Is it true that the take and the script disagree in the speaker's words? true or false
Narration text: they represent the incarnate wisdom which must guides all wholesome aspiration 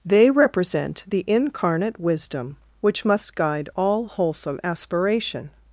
true